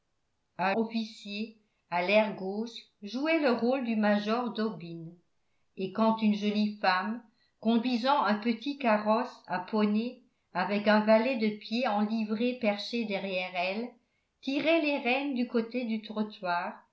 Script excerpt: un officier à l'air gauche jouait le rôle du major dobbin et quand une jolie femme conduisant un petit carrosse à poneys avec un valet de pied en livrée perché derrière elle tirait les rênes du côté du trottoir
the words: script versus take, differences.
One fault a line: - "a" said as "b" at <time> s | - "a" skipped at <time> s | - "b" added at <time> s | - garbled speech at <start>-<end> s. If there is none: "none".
none